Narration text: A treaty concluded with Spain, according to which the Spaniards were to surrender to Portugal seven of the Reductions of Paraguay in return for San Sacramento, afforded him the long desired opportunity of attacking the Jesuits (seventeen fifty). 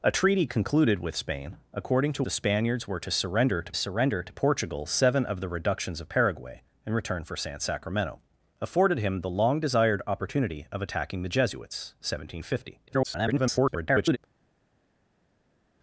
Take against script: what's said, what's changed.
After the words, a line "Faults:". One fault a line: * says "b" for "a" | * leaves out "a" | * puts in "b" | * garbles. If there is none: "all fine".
A treaty concluded with Spain, according to the Spaniards were to surrender to surrender to Portugal seven of the Reductions of Paraguay in return for San Sacramento, afforded him the long desired opportunity of attacking the Jesuits (seventeen fifty). [garbled]
Faults:
* leaves out "which"
* puts in "surrender to"
* garbles